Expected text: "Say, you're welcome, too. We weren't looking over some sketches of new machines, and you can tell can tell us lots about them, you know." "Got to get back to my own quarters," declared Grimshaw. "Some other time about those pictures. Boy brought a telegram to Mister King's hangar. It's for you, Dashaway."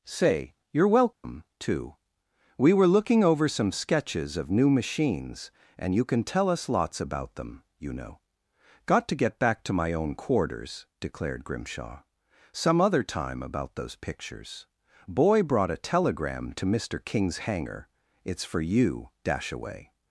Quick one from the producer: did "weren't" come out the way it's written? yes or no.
no